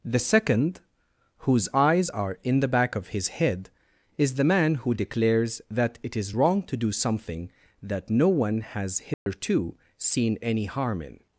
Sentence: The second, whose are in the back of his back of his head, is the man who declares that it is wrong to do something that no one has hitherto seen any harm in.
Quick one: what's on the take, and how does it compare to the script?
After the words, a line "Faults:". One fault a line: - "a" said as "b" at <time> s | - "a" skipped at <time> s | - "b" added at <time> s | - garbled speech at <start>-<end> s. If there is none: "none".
The second, whose eyes are in the back of his head, is the man who declares that it is wrong to do something that no one has hitherto seen any harm in.
Faults:
- "eyes" added at 1.8 s
- "back of his" skipped at 3.3 s